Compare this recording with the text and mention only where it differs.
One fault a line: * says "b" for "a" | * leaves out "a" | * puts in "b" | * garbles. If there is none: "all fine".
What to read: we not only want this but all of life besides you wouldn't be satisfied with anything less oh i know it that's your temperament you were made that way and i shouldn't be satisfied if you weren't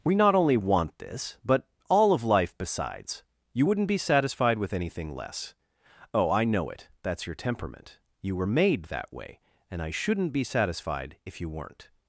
all fine